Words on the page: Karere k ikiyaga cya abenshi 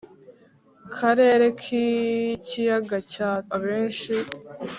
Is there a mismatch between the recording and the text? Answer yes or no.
no